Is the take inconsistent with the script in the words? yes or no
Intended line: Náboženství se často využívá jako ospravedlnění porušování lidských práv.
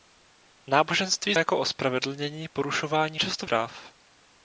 yes